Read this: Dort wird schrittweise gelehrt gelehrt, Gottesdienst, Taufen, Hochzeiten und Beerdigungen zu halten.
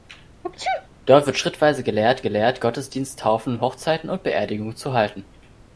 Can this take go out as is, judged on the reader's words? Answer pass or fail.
pass